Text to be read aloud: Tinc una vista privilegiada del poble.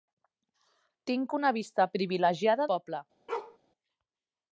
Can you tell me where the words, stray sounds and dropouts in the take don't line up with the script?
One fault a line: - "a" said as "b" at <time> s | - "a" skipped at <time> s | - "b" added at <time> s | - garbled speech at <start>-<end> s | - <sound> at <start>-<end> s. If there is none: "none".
- "del" skipped at 2.7 s
- bark at 3.3-3.6 s